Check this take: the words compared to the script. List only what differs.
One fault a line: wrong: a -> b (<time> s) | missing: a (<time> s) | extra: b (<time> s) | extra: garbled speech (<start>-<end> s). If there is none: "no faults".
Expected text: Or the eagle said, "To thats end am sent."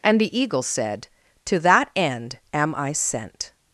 wrong: Or -> And (0.0 s)
wrong: thats -> that (1.6 s)
extra: I (2.7 s)